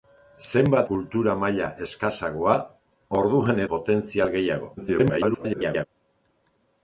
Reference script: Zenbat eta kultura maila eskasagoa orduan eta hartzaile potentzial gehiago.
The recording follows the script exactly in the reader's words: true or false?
false